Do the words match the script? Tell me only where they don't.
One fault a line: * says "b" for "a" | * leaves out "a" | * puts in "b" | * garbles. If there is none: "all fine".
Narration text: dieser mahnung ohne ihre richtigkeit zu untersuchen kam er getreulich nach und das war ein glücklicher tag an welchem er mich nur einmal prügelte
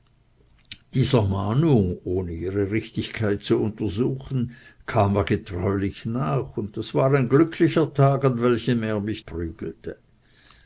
* leaves out "nur einmal"